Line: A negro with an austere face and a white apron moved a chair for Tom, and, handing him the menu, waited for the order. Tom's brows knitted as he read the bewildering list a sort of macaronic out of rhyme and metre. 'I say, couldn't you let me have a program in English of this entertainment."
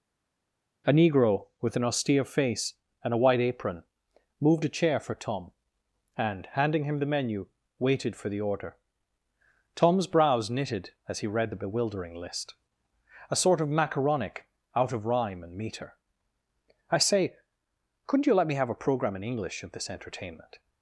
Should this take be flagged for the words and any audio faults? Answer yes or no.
no